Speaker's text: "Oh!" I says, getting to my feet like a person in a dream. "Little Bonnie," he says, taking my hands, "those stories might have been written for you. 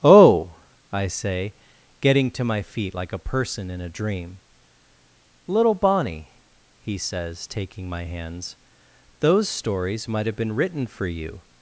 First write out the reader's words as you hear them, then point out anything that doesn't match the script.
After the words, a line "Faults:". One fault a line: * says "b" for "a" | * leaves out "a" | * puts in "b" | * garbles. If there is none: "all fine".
"Oh!" I say, getting to my feet like a person in a dream. "Little Bonnie," he says, taking my hands, "those stories might have been written for you.
Faults:
* says "say" for "says"